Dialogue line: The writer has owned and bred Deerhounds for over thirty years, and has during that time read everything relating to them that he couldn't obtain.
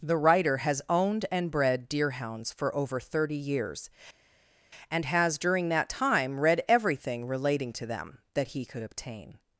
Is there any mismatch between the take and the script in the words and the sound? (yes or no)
yes